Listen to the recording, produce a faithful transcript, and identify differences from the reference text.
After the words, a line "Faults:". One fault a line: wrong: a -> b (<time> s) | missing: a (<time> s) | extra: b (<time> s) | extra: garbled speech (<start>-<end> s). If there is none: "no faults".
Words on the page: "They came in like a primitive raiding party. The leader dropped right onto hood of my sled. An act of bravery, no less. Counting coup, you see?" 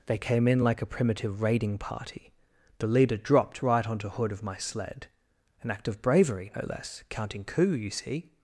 "They came in like a primitive raiding party. The leader dropped right onto hood of my sled. An act of bravery, no less. Counting coup, you see?"
Faults:
no faults